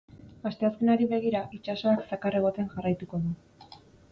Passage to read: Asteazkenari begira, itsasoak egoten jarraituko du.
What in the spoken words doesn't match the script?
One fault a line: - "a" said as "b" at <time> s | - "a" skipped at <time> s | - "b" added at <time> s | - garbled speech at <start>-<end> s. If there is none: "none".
- "zakar" added at 2.1 s